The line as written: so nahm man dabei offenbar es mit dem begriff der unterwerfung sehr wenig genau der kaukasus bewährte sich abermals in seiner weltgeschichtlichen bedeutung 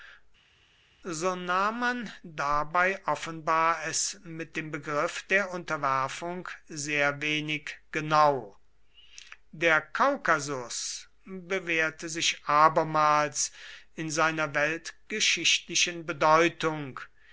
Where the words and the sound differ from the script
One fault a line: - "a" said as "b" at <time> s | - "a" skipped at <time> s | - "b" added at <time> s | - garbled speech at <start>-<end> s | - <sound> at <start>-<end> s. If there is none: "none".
none